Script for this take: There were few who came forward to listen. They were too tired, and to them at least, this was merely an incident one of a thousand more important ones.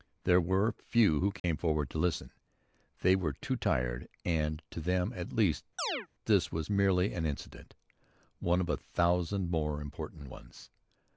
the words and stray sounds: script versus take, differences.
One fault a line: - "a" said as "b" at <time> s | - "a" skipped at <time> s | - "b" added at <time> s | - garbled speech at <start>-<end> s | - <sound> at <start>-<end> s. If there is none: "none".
- dropout at 1.4-1.4 s
- chirp at 5.8-6.1 s